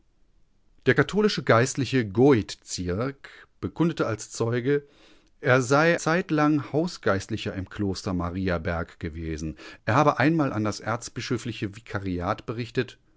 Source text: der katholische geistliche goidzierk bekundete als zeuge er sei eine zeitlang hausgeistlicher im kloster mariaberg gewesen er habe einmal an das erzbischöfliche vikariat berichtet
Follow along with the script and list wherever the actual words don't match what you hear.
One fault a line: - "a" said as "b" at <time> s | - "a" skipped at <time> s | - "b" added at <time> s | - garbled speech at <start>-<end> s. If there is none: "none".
- "eine" skipped at 6.0 s